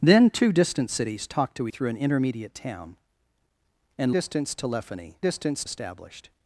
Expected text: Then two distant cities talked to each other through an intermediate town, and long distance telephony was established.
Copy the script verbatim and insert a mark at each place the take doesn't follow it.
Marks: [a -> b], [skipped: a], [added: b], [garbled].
Then two distant cities talked to [skipped: each other] through an intermediate town, and [skipped: long] distance telephony [was -> distance] established.